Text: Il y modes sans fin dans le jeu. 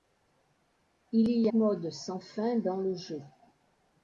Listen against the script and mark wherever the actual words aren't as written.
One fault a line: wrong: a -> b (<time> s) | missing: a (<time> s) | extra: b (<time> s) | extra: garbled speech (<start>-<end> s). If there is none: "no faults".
no faults